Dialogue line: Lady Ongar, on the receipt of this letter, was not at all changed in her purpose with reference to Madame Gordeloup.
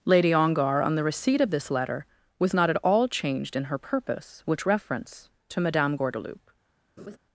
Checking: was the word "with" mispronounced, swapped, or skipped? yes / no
yes